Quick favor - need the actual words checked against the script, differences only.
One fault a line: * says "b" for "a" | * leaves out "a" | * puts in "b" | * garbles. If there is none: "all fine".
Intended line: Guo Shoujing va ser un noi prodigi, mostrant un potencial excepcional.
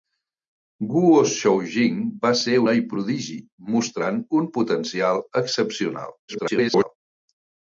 * leaves out "un"
* garbles